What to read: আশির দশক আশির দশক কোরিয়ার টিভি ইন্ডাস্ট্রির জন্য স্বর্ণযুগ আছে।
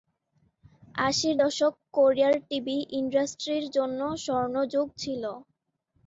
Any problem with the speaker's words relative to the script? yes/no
yes